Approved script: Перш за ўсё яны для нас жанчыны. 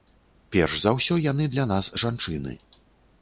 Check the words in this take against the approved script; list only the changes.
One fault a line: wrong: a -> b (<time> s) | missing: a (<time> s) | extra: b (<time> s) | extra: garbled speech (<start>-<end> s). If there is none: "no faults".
no faults